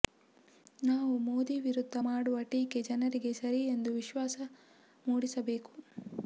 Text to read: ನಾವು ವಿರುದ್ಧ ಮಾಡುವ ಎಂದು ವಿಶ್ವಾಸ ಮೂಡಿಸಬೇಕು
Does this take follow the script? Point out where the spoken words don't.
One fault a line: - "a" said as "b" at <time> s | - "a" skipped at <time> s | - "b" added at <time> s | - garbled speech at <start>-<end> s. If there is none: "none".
- "ಮೋದಿ" added at 1.2 s
- "ಟೀಕೆ ಜನರಿಗೆ ಸರಿ" added at 2.5 s